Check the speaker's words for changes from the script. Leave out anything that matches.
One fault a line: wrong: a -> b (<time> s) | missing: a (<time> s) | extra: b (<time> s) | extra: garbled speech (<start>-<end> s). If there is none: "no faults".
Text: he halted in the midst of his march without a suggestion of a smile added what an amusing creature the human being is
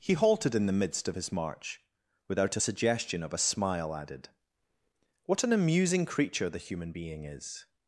no faults